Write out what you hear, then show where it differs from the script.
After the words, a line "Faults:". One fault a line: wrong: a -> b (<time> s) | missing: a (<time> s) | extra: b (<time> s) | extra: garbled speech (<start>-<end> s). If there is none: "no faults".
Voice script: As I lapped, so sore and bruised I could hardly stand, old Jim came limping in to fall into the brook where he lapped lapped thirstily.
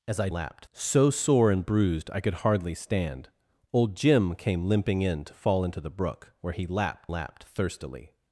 As I lapped, so sore and bruised I could hardly stand, old Jim came limping in to fall into the brook where he lapped lapped thirstily.
Faults:
no faults